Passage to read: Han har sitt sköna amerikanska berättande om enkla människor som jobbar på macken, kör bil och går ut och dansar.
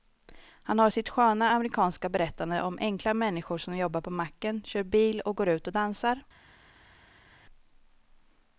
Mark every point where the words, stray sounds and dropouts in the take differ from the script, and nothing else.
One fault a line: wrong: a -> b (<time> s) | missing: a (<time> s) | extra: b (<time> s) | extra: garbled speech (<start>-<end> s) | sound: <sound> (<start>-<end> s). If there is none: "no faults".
no faults